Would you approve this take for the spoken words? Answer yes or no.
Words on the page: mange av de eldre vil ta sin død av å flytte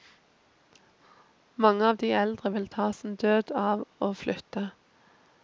yes